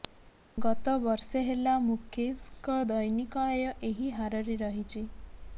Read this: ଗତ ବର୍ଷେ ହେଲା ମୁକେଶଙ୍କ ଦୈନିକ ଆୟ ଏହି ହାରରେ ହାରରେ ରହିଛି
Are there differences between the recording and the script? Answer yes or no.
yes